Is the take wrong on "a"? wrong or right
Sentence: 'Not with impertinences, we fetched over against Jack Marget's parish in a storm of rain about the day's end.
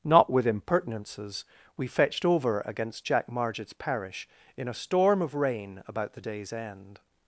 right